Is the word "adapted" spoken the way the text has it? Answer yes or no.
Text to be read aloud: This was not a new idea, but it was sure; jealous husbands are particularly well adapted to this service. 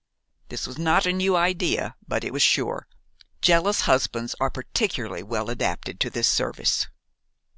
yes